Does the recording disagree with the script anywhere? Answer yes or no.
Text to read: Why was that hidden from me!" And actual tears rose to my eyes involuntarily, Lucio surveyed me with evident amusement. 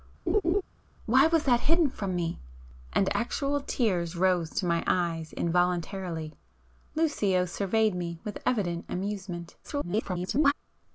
yes